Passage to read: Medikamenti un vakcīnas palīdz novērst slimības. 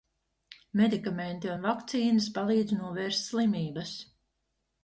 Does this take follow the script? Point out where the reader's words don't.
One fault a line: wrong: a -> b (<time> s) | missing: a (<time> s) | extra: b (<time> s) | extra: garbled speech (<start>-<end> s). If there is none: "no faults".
no faults